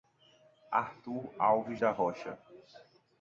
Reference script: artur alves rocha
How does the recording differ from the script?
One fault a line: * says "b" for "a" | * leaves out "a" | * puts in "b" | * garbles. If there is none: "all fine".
* puts in "da"